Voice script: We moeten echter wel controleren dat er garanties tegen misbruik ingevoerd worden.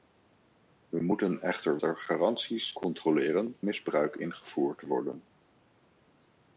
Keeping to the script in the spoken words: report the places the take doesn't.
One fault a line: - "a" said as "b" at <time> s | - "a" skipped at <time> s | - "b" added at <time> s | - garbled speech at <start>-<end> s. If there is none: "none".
- "wel controleren dat" skipped at 1.8 s
- "tegen" said as "controleren" at 2.7 s